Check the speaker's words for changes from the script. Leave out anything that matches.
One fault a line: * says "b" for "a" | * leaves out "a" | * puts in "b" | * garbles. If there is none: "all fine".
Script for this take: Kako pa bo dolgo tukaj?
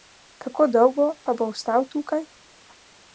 * puts in "dolgo"
* says "ostal" for "dolgo"